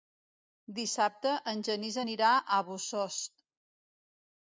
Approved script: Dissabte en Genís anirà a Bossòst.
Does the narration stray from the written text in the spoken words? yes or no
no